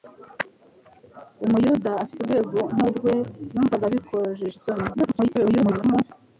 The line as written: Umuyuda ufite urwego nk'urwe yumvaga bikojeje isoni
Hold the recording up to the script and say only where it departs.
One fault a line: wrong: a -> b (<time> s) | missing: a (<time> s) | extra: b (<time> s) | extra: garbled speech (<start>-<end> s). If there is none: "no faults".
extra: garbled speech (4.9-6.1 s)